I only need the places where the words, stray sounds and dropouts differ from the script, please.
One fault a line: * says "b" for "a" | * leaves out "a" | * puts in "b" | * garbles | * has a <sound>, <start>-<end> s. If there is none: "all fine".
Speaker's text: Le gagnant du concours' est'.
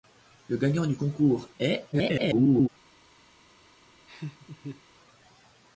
* garbles
* has a laugh, 4.1-4.8 s